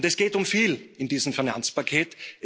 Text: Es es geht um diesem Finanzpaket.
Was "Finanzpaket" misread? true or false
false